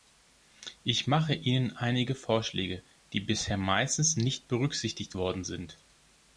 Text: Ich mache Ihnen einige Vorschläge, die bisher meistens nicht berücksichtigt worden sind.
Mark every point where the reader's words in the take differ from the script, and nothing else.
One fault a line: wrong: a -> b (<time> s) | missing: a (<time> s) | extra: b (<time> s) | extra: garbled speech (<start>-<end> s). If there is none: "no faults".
no faults